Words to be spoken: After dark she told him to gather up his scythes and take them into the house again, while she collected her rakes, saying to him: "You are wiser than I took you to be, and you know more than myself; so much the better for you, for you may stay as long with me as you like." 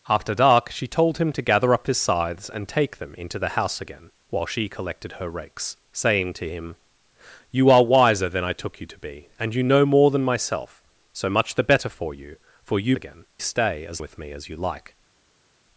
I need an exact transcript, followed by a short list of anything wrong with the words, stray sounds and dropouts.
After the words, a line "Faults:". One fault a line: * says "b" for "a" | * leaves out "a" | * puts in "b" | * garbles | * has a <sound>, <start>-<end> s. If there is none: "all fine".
After dark she told him to gather up his scythes and take them into the house again, while she collected her rakes, saying to him: "You are wiser than I took you to be, and you know more than myself; so much the better for you, for you again stay as with me as you like."
Faults:
* says "again" for "may"
* leaves out "long"